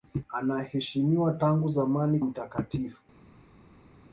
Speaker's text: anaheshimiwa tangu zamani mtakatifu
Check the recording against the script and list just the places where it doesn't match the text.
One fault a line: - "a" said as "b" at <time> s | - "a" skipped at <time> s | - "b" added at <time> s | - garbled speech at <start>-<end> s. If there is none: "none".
none